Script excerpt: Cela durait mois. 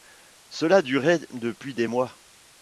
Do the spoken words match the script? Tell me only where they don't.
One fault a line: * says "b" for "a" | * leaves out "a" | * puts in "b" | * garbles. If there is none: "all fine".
* puts in "depuis des"